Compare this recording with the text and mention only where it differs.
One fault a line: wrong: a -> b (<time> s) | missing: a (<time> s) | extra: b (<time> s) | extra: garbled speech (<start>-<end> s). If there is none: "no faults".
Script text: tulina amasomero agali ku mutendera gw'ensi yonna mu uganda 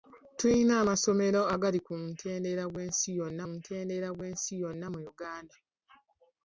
extra: mutendera gw'ensi yonna (3.5 s)